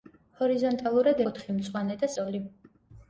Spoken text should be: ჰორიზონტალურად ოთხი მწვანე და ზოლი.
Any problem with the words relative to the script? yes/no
no